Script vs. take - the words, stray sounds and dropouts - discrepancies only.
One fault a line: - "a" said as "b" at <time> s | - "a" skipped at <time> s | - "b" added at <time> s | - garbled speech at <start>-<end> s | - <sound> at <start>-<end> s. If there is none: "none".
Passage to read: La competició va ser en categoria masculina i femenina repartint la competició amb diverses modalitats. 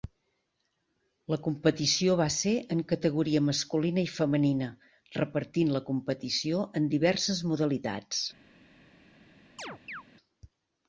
- "amb" said as "en" at 6.8 s
- chirp at 9.6-10.0 s